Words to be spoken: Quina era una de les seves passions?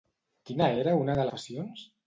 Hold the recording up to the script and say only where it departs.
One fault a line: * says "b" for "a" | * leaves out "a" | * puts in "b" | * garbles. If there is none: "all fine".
* leaves out "les seves"